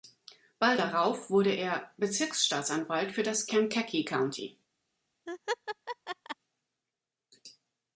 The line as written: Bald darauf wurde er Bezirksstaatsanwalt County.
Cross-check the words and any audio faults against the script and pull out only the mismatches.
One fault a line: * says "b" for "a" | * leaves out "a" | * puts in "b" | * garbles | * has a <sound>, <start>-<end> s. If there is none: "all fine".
* puts in "für das Kankakee"
* has a laugh, 5.3-6.4 s